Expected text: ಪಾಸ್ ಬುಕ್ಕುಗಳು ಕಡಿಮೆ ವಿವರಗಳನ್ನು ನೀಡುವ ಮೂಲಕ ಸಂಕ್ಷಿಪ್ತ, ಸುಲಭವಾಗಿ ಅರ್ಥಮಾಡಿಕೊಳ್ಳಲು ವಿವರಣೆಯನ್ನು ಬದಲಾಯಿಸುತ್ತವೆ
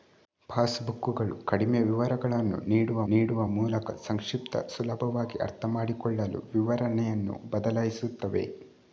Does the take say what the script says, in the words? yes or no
no